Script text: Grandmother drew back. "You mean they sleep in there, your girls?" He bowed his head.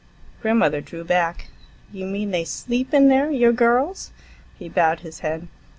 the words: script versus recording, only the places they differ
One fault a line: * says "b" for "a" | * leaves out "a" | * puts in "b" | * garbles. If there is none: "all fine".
all fine